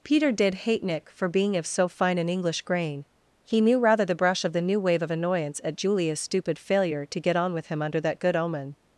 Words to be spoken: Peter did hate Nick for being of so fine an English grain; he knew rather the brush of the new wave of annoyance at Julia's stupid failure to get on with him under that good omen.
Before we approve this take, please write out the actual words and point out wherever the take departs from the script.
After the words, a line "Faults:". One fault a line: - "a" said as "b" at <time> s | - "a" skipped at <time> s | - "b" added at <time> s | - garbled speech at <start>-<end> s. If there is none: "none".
Peter did hate Nick for being of so fine an English grain; he knew rather the brush of the new wave of annoyance at Julia's stupid failure to get on with him under that good omen.
Faults:
none